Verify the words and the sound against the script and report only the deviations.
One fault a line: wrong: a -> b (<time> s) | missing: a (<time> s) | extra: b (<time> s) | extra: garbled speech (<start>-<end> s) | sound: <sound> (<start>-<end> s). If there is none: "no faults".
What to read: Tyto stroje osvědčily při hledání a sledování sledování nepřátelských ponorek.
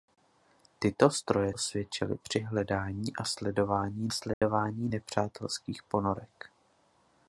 sound: dropout (4.3-4.4 s)